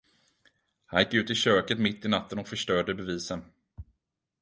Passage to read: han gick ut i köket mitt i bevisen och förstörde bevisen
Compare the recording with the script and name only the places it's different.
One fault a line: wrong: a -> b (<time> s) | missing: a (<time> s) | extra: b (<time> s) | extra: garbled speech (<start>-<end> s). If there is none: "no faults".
wrong: bevisen -> natten (2.1 s)